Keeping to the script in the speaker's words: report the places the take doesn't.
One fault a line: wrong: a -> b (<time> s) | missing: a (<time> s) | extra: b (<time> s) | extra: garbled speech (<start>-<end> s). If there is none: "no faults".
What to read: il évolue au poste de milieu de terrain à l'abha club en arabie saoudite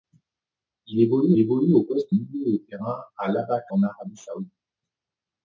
extra: évolue (1.4 s)
missing: de (2.2 s)
missing: club (3.6 s)